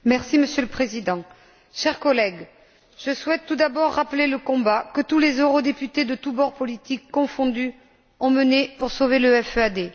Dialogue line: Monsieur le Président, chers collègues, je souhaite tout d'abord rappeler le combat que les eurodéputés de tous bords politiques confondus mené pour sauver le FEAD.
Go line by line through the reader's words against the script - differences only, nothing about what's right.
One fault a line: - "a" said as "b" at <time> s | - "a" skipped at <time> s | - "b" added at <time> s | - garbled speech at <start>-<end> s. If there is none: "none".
- "tous" added at 5.0 s
- "ont" added at 8.2 s